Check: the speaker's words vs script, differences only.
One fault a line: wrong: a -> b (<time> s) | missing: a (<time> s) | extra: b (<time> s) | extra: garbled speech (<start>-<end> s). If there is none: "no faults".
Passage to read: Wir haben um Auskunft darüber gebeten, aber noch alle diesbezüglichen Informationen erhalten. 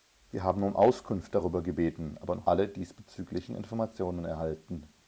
no faults